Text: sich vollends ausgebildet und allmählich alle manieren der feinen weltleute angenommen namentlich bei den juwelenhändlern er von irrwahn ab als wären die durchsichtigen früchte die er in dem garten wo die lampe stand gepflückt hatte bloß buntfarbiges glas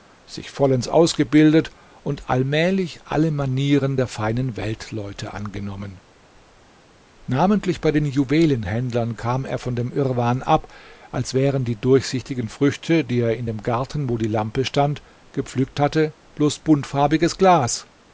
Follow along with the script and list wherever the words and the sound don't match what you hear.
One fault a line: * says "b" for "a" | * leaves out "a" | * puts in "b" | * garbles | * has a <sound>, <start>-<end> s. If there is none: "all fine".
* puts in "kam"
* puts in "dem"